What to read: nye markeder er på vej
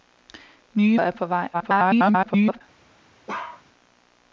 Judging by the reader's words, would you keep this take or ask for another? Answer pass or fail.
fail